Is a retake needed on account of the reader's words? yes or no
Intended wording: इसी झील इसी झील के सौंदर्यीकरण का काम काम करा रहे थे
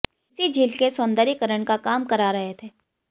yes